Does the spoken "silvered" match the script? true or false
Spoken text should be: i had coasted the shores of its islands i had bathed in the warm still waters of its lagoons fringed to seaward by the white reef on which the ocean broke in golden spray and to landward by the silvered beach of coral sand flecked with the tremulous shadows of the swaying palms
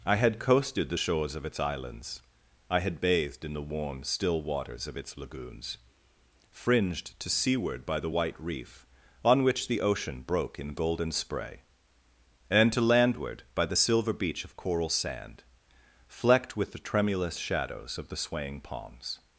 false